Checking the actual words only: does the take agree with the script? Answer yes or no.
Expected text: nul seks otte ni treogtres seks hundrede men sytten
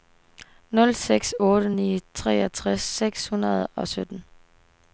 no